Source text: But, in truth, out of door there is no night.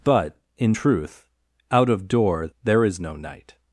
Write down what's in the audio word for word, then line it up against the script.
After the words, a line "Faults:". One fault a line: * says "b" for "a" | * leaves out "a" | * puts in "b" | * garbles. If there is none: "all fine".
But, in truth, out of door there is no night.
Faults:
all fine